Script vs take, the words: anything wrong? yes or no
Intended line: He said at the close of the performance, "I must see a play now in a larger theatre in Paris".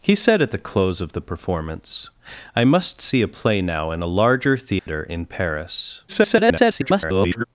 yes